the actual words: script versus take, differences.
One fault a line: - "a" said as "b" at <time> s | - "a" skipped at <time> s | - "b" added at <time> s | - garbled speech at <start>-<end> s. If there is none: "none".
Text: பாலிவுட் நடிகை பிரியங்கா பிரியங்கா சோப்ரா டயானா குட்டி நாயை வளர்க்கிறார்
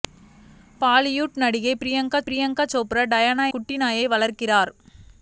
none